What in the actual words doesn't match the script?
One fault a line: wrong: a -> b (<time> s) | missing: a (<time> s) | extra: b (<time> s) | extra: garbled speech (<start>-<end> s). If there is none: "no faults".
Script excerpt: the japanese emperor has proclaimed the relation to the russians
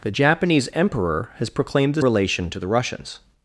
no faults